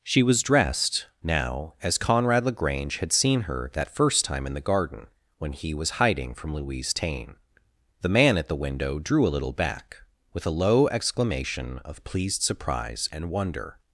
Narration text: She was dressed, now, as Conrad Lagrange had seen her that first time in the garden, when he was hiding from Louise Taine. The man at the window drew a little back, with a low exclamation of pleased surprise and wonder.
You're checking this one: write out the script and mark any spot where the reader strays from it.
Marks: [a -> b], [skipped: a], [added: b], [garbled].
She was dressed, now, as Conrad Lagrange had seen her that first time in the garden, when he was hiding from Louise Taine. The man at the window drew a little back, with a low exclamation of pleased surprise and wonder.